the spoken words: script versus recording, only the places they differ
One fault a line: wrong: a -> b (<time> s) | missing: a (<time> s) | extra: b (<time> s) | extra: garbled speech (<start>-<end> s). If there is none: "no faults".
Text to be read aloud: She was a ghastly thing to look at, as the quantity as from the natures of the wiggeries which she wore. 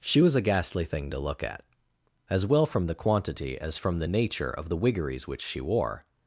extra: well from (2.5 s)
wrong: natures -> nature (4.1 s)